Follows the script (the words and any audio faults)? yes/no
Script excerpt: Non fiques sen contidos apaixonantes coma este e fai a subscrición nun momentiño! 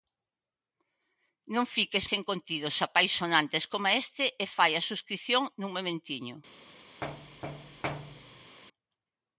no